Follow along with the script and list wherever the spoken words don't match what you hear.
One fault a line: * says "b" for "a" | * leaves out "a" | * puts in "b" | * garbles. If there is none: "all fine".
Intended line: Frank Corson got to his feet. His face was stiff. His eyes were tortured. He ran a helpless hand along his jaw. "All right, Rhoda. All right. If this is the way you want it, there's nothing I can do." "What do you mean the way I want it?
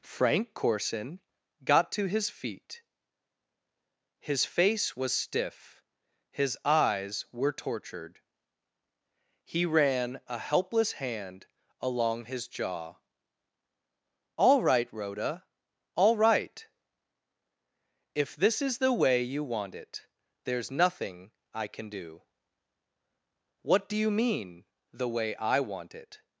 all fine